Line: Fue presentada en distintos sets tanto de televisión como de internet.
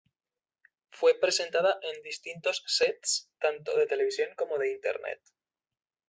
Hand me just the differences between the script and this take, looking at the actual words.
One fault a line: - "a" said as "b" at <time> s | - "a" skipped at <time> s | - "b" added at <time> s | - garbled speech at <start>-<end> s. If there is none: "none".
none